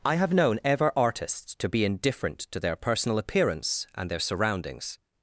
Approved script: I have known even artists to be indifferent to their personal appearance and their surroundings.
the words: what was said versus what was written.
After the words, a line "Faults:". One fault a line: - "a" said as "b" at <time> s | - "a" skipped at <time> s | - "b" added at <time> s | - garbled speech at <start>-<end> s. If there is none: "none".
I have known ever artists to be indifferent to their personal appearance and their surroundings.
Faults:
- "even" said as "ever" at 0.6 s